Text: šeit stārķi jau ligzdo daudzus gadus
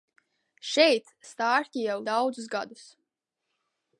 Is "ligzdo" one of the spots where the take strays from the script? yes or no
yes